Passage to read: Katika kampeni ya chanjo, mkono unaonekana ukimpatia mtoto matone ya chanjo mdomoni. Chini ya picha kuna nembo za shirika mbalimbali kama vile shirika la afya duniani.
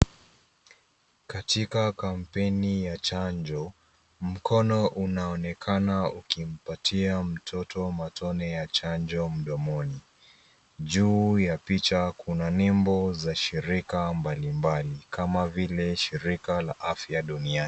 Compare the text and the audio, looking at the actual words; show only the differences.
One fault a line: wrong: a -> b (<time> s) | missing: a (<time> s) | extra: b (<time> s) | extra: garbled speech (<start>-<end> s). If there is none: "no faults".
wrong: Chini -> Juu (10.8 s)